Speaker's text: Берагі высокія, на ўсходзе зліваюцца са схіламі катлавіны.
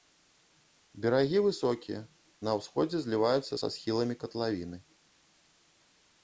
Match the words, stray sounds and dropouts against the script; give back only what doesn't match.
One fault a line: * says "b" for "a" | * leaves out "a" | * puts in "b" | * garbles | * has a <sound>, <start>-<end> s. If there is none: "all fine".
all fine